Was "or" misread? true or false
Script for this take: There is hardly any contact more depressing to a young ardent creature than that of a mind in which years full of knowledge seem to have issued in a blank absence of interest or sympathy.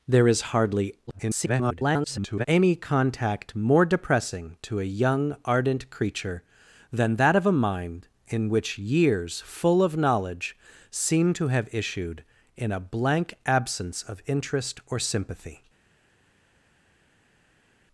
false